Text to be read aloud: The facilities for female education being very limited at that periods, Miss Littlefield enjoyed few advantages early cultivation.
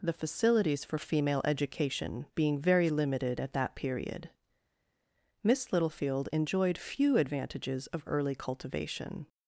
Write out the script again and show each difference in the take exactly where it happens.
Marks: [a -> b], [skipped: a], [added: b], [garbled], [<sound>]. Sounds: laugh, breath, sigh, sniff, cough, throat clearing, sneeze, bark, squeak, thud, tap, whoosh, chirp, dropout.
The facilities for female education being very limited at that [periods, -> period] Miss Littlefield enjoyed few advantages [added: of] early cultivation.